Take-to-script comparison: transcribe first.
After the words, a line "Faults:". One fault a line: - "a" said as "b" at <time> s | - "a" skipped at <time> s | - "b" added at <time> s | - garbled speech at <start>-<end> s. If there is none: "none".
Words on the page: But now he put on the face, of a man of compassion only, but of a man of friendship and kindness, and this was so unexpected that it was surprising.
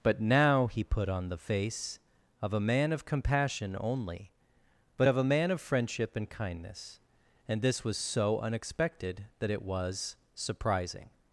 But now he put on the face, of a man of compassion only, but of a man of friendship and kindness, and this was so unexpected that it was surprising.
Faults:
none